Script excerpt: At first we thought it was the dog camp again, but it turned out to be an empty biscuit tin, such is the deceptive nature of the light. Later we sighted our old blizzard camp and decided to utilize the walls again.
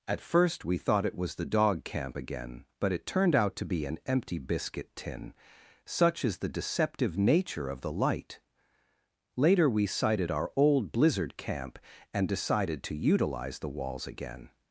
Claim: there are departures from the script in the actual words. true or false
false